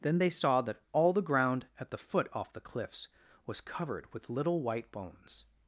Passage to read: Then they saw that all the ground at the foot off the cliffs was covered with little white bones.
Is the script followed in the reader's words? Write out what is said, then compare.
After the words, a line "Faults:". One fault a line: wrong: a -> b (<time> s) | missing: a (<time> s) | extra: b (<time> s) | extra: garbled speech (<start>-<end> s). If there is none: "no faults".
Then they saw that all the ground at the foot off the cliffs was covered with little white bones.
Faults:
no faults